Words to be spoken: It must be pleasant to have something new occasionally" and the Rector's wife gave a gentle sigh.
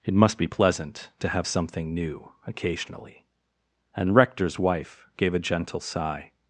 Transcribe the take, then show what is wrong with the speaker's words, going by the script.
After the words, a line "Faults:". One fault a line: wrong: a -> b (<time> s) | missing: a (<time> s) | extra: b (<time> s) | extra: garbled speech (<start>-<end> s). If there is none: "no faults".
It must be pleasant to have something new occasionally" and Rector's wife gave a gentle sigh.
Faults:
missing: the (4.1 s)